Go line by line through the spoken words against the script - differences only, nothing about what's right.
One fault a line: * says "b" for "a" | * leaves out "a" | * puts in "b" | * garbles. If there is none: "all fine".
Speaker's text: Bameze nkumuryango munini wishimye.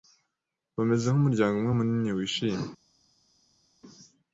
* puts in "umwe"